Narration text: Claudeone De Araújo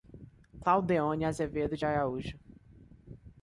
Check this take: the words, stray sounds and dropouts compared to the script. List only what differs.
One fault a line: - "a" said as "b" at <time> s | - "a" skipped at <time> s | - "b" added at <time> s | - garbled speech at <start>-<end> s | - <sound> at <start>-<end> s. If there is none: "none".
- "Azevedo" added at 1.2 s